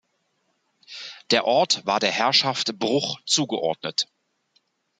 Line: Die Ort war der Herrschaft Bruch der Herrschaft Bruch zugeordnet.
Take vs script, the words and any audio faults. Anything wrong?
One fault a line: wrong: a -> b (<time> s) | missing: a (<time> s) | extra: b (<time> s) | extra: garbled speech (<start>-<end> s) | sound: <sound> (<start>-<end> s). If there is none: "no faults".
wrong: Die -> Der (1.3 s)
missing: der Herrschaft Bruch (3.2 s)